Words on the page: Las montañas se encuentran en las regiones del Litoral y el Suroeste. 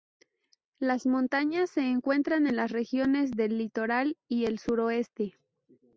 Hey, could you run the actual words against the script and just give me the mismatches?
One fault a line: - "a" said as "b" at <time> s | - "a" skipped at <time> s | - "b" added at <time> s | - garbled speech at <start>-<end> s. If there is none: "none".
none